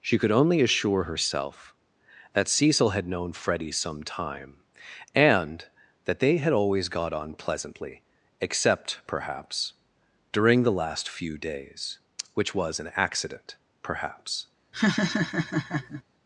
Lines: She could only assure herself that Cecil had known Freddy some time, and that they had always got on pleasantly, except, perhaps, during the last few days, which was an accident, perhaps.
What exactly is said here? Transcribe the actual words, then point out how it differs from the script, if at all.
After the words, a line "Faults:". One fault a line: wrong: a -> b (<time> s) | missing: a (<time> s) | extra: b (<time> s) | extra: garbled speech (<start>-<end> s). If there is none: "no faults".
She could only assure herself that Cecil had known Freddy some time, and that they had always got on pleasantly, except, perhaps, during the last few days, which was an accident, perhaps.
Faults:
no faults